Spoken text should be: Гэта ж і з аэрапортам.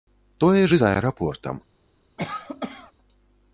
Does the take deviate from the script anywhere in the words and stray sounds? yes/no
yes